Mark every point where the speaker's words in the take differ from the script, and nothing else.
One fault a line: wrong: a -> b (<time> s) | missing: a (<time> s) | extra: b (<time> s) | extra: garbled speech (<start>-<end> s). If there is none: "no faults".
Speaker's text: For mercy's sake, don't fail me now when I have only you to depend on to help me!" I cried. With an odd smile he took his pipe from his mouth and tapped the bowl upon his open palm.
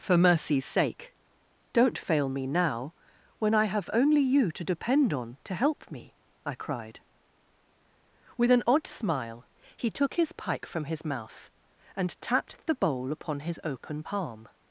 wrong: pipe -> pike (10.3 s)